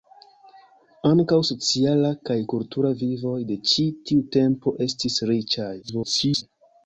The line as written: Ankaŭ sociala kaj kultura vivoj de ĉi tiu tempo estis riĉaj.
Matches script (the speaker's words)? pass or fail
fail